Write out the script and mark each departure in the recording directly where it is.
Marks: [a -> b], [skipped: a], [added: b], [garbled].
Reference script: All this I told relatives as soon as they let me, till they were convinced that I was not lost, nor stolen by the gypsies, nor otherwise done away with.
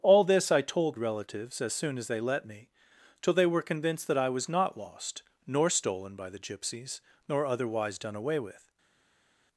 All this I told relatives as soon as they let me, till they were convinced that I was not lost, nor stolen by the gypsies, nor otherwise done away with.